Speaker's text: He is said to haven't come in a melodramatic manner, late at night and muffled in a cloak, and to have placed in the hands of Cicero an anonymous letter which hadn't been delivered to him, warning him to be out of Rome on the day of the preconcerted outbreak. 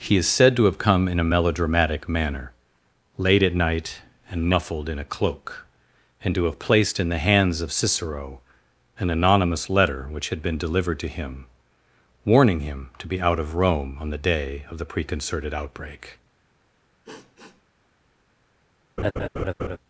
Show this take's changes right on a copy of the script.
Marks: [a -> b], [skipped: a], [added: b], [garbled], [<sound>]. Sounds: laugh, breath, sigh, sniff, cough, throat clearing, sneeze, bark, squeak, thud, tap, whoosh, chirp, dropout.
He is said to [haven't -> have] come in a melodramatic manner, late at night and muffled in a cloak, and to have placed in the hands of Cicero an anonymous letter which [hadn't -> had] been delivered to him, warning him to be out of Rome on the day of the preconcerted outbreak. [sniff] [laugh]